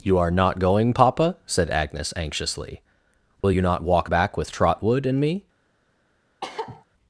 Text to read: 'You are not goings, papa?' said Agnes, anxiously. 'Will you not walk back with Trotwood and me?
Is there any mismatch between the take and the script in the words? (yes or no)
yes